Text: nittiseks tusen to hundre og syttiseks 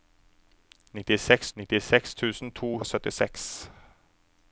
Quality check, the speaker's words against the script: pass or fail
fail